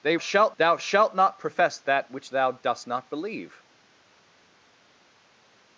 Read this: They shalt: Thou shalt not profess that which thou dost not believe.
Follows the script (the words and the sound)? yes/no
yes